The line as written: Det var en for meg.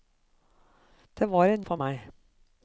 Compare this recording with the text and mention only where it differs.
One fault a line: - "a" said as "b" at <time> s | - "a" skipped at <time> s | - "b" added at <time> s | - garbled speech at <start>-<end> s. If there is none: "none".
none